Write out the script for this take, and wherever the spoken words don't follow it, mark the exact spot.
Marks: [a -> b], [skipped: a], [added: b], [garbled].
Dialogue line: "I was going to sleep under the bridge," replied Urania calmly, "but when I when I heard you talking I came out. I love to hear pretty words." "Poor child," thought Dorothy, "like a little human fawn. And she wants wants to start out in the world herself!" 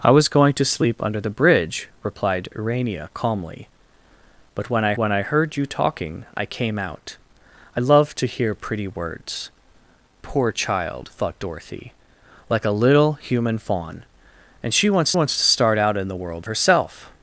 "I was going to sleep under the bridge," replied Urania calmly, "but when I when I heard you talking I came out. I love to hear pretty words." "Poor child," thought Dorothy, "like a little human fawn. And she wants wants to start out in the world herself!"